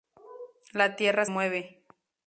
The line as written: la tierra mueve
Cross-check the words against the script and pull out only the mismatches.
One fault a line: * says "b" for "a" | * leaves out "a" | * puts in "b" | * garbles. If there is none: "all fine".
all fine